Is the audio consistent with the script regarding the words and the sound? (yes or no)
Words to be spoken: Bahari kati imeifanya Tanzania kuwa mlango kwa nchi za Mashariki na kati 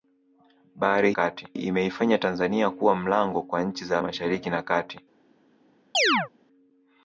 no